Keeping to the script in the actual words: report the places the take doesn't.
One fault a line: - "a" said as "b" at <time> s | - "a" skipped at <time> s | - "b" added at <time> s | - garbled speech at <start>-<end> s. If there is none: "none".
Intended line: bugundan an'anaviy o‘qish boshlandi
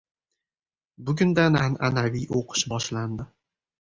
none